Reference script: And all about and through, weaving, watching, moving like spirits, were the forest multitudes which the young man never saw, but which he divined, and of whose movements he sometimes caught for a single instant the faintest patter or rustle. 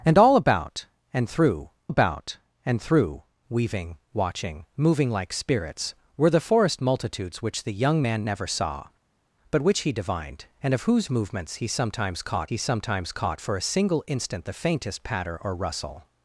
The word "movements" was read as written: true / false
true